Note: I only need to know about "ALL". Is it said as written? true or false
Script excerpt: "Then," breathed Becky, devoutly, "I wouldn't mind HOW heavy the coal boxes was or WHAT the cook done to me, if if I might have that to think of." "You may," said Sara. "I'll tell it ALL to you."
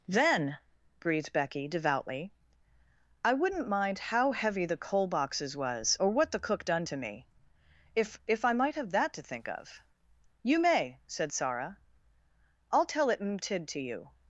false